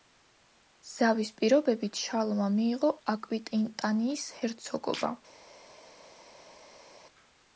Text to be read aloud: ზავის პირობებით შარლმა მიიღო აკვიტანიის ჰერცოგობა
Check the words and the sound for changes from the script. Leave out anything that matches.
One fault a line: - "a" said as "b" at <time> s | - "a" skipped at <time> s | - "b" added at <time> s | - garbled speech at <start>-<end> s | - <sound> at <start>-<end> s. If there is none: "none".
none